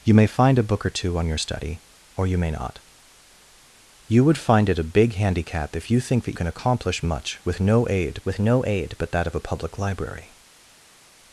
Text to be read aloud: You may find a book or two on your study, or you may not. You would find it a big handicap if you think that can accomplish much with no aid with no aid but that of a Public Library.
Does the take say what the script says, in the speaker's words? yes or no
yes